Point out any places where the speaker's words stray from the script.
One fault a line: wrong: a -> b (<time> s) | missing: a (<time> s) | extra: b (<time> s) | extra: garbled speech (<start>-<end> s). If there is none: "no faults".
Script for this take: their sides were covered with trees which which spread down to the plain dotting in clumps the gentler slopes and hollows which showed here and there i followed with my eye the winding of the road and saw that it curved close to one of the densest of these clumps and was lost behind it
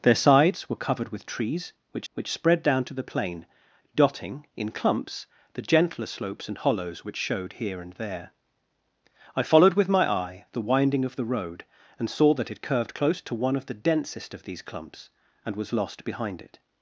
no faults